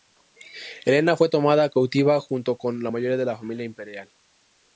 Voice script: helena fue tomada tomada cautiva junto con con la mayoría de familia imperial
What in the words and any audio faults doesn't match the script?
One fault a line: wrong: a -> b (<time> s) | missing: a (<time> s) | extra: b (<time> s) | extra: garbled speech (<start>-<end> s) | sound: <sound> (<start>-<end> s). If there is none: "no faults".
missing: tomada (1.7 s)
missing: con (2.8 s)
extra: la (3.2 s)